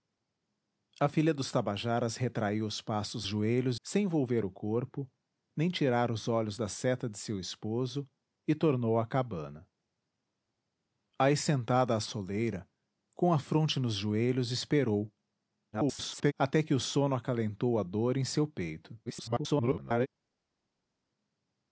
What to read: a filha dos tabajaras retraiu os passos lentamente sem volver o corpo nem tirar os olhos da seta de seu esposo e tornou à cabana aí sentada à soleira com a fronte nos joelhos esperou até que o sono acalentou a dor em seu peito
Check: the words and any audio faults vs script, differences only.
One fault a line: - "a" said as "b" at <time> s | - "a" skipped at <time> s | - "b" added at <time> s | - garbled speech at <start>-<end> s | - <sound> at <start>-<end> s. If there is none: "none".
- "lentamente" said as "joelhos" at 3.2 s
- garbled speech at 15.7-16.3 s
- garbled speech at 19.1-20.1 s